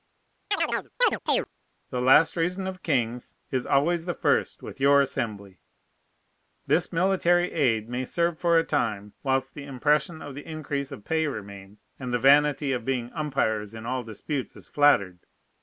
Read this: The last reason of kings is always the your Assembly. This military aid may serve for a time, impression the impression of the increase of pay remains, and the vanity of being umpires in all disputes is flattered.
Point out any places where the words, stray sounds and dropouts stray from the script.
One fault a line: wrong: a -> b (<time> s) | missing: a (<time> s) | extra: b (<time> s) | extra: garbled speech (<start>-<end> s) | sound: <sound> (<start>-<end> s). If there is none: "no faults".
sound: chirp (0.5-1.5 s)
extra: first with (4.1 s)
wrong: impression -> whilst (9.2 s)